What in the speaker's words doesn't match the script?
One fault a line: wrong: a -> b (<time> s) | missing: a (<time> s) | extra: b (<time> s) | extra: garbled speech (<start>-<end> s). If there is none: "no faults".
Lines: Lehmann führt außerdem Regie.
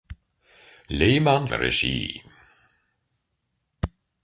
missing: führt außerdem (1.5 s)